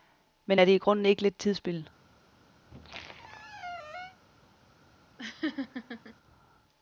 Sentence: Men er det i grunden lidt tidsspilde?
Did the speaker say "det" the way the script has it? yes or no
yes